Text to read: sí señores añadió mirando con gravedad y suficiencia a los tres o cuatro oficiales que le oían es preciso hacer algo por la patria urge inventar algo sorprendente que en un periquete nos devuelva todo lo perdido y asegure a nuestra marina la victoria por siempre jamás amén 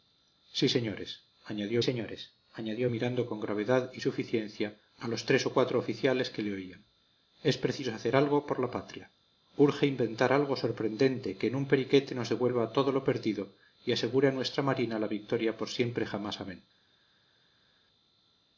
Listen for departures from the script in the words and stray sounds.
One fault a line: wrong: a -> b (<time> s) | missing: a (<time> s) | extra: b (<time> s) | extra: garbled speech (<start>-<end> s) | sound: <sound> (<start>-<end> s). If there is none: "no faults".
extra: señores añadió (1.8 s)